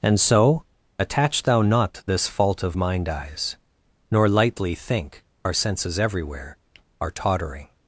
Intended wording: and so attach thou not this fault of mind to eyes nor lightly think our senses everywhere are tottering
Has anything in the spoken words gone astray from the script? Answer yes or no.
yes